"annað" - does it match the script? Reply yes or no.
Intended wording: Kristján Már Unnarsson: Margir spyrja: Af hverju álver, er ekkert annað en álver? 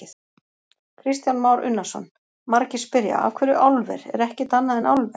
yes